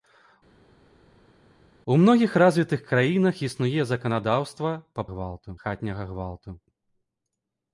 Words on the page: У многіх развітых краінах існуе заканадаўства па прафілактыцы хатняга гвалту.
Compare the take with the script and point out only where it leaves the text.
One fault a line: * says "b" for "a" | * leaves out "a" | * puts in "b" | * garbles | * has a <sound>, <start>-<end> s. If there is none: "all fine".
* says "гвалту" for "прафілактыцы"